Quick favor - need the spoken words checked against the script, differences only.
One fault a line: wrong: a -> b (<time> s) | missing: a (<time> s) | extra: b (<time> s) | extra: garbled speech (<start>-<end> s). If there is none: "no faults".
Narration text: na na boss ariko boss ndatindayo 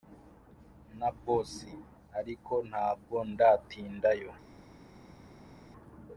missing: na (1.1 s)
wrong: boss -> ntabwo (2.7 s)